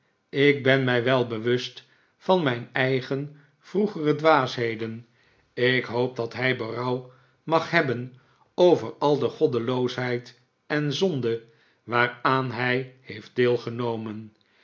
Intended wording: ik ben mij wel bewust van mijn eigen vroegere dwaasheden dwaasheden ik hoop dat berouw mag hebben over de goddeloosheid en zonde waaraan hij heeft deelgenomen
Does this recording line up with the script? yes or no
no